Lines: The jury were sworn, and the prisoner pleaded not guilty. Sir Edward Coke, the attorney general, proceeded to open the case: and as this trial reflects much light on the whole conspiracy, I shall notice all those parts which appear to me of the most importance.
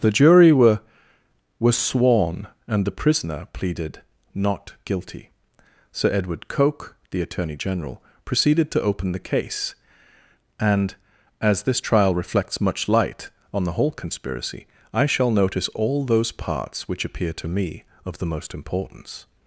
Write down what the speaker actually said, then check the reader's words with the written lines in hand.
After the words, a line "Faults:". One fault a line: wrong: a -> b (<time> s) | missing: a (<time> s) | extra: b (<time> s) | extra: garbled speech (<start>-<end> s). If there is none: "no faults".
The jury were were sworn, and the prisoner pleaded not guilty. Sir Edward Coke, the attorney general, proceeded to open the case: and as this trial reflects much light on the whole conspiracy, I shall notice all those parts which appear to me of the most importance.
Faults:
extra: were (1.6 s)